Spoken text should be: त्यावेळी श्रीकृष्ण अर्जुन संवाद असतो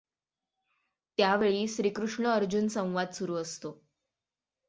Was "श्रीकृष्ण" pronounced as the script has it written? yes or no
yes